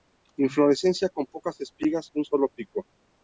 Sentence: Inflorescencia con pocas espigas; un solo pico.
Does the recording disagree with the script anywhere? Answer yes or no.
no